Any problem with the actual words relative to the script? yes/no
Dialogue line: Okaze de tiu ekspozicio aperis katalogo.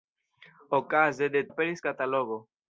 yes